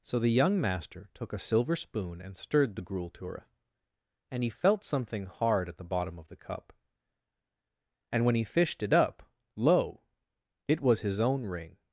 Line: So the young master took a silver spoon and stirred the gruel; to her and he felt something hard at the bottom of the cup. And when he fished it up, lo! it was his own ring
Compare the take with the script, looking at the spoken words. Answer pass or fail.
pass